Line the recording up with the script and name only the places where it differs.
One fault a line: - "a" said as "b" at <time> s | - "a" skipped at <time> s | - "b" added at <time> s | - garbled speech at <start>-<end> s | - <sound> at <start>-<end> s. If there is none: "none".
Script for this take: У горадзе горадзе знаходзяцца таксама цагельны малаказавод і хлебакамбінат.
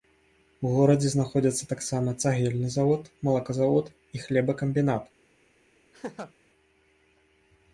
- "горадзе" skipped at 1.1 s
- "завод" added at 2.8 s
- laugh at 5.9-6.3 s